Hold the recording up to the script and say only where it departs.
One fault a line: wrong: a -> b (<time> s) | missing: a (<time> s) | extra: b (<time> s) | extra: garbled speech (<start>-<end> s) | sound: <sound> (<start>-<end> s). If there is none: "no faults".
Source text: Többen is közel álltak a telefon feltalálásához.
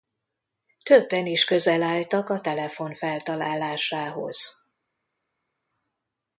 no faults